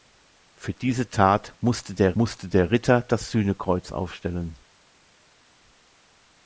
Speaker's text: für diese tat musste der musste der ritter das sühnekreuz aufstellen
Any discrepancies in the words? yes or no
no